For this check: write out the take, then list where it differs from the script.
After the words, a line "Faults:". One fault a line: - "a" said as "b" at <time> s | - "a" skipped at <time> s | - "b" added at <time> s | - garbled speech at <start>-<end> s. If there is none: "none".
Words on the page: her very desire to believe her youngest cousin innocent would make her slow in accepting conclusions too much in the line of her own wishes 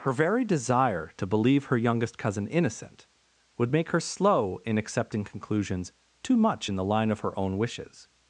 her very desire to believe her youngest cousin innocent would make her slow in accepting conclusions too much in the line of her own wishes
Faults:
none